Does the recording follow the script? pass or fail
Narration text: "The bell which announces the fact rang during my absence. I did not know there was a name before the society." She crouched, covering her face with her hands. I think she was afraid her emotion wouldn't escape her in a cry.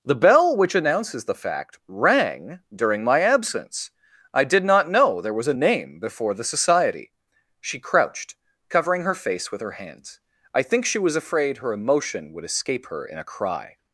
fail